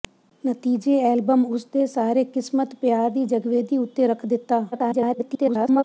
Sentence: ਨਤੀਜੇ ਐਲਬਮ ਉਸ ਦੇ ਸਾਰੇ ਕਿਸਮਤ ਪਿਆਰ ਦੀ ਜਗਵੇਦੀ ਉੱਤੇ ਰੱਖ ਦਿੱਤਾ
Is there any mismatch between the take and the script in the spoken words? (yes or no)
yes